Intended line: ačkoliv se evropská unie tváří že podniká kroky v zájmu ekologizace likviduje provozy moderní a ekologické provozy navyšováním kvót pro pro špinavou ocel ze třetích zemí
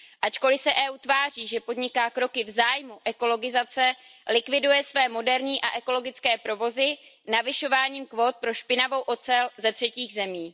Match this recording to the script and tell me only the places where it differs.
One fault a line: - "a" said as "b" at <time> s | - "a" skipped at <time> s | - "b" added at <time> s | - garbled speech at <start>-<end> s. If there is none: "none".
- "provozy" said as "své" at 4.8 s
- "pro" skipped at 8.5 s